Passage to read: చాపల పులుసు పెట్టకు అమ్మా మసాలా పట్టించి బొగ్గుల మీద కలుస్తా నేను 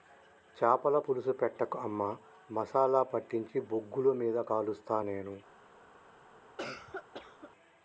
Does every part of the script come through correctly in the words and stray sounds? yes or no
no